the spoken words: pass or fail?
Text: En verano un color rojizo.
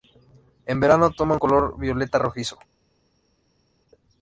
fail